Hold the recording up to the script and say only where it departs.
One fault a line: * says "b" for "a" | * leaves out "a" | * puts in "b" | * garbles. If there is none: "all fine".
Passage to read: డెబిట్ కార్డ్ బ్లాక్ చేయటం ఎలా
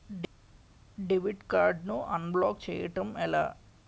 * puts in "ను అన్బ్లాక్"